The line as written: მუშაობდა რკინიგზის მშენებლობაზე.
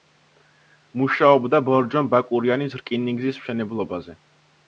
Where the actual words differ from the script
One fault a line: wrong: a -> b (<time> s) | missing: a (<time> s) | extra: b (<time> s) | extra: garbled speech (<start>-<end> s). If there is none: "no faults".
extra: ბორჯომ ბაკურიანის (1.7 s)